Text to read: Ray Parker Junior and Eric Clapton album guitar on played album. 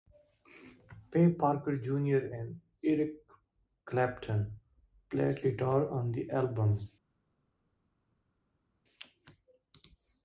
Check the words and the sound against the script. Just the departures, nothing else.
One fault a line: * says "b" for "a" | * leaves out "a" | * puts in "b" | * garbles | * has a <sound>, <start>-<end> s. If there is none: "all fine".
* says "played" for "album"
* says "the" for "played"